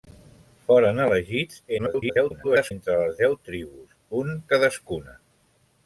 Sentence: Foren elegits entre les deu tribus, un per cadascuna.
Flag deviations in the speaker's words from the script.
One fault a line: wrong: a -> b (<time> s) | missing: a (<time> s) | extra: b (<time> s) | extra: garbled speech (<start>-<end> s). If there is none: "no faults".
extra: garbled speech (1.8-2.7 s)
missing: per (4.4 s)